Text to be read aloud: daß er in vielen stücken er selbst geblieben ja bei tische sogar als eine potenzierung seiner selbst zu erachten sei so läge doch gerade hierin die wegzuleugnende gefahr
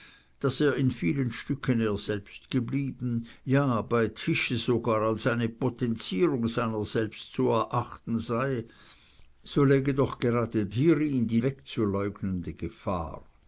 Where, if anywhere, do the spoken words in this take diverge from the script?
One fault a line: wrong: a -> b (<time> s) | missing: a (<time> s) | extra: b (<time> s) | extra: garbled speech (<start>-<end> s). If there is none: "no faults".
no faults